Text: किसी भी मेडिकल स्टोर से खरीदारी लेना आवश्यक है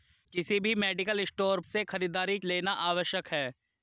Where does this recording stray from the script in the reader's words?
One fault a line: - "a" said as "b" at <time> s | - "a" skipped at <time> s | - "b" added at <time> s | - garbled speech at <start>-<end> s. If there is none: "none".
none